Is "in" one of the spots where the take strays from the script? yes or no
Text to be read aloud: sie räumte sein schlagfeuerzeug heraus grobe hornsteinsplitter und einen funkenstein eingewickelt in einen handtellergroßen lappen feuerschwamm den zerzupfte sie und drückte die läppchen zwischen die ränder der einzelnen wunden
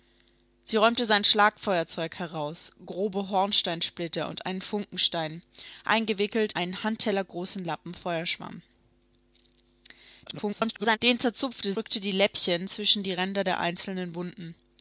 yes